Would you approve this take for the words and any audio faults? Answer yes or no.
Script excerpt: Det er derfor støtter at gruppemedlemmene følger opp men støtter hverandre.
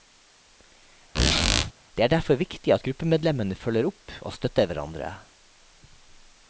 no